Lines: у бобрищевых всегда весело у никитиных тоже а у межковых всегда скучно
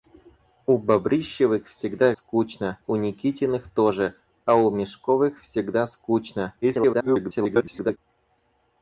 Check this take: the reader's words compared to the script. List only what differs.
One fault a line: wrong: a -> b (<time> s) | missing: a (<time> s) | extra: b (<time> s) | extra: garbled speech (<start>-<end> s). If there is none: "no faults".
wrong: весело -> скучно (2.1 s)
extra: garbled speech (6.6-8.0 s)